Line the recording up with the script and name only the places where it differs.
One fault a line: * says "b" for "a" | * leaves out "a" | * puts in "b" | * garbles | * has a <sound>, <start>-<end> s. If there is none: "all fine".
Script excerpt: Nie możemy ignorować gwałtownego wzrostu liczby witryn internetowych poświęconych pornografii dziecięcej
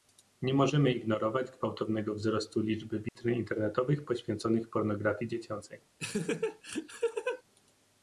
* has a dropout, 3.1-3.2 s
* has a laugh, 6.0-7.4 s